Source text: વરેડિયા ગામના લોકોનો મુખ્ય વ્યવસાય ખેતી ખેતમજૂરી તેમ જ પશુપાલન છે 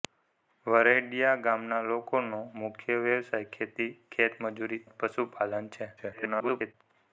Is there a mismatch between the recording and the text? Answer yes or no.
yes